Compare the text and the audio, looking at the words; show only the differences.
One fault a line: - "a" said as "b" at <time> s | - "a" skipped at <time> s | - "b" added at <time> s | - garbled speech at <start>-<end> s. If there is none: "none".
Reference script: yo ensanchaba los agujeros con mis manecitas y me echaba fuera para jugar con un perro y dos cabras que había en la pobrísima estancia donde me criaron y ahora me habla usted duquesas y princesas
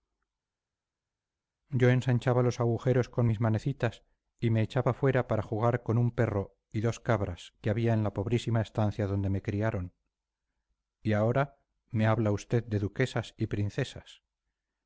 - "de" added at 12.6 s